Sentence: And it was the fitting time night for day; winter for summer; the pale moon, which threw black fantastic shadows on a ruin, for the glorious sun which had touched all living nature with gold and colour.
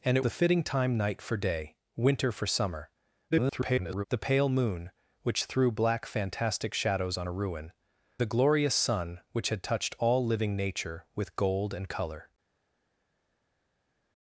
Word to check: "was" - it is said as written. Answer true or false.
false